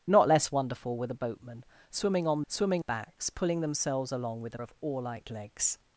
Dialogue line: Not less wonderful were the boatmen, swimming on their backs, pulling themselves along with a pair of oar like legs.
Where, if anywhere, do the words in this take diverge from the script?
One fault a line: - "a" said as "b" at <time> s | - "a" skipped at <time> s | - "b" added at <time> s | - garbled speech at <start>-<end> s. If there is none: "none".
- "their" said as "swimming" at 2.5 s
- "pair" skipped at 4.6 s